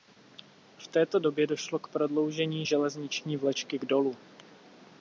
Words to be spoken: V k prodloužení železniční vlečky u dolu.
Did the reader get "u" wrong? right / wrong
wrong